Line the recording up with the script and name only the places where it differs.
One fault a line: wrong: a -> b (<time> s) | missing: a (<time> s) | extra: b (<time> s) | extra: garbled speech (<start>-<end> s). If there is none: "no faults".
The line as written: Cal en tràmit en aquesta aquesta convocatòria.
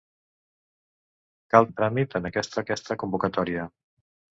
no faults